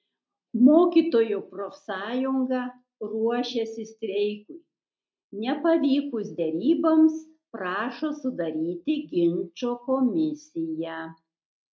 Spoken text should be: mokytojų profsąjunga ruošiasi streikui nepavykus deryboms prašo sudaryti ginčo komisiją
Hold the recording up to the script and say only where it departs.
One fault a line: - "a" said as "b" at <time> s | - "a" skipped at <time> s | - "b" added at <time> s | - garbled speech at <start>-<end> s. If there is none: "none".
none